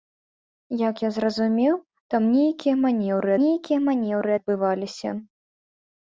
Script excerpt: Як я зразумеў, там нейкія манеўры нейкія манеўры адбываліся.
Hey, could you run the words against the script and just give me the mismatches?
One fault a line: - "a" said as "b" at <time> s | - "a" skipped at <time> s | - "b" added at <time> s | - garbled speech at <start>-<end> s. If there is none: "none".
none